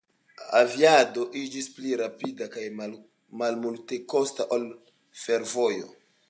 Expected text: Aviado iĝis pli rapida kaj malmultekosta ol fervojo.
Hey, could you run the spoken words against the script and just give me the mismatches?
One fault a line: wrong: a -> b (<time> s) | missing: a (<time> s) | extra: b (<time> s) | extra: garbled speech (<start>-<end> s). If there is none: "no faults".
no faults